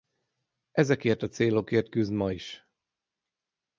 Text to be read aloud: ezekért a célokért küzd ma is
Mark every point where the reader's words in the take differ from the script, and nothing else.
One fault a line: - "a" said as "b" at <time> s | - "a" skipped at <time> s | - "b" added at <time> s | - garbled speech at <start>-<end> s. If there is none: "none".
none